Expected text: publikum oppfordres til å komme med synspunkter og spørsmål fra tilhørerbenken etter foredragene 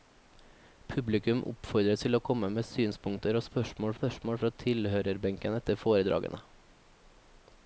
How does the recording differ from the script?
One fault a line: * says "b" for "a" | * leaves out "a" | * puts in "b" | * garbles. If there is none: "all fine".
* puts in "spørsmål"